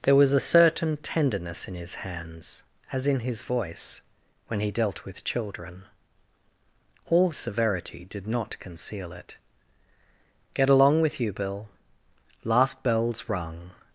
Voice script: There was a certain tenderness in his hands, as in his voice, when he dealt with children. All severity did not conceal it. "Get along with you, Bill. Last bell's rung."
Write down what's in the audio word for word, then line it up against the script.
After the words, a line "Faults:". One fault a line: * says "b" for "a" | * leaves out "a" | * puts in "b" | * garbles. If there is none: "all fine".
There was a certain tenderness in his hands, as in his voice, when he dealt with children. All severity did not conceal it. "Get along with you, Bill. Last bell's rung."
Faults:
all fine